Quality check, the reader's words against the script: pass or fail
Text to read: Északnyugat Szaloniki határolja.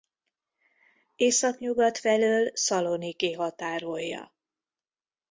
fail